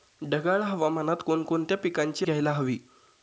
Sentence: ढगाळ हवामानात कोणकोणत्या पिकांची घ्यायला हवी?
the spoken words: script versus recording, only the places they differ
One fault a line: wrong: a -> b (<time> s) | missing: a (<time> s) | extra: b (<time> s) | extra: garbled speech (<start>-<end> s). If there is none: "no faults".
no faults